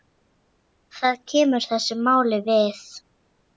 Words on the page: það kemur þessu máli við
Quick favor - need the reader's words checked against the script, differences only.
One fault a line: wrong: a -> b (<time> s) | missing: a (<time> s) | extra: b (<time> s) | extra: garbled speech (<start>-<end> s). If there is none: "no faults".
no faults